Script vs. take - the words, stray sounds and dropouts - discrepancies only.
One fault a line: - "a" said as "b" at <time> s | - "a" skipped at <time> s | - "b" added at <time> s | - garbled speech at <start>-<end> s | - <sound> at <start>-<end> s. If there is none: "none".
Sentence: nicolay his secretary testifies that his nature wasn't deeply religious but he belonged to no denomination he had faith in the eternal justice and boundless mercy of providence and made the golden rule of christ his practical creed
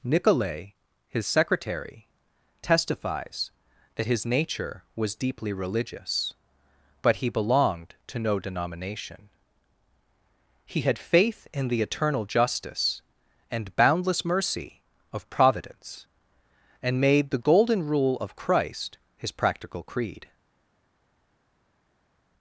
- "wasn't" said as "was" at 5.0 s